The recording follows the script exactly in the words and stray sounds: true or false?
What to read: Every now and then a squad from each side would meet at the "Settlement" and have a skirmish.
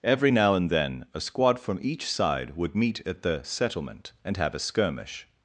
true